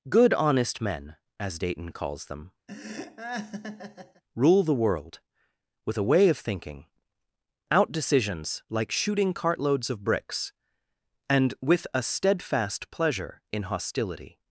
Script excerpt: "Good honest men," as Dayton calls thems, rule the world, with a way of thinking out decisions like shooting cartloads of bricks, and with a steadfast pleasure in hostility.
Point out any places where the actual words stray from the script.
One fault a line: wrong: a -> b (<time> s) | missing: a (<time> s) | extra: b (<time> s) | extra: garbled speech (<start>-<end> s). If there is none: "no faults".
wrong: thems -> them (2.2 s)